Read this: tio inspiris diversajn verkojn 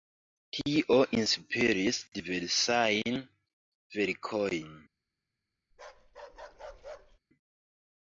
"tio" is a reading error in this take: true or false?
false